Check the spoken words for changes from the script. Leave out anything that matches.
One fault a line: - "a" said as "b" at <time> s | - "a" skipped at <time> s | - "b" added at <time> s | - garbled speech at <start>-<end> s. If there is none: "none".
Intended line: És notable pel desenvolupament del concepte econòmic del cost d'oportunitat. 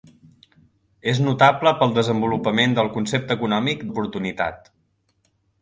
- "del cost" skipped at 3.9 s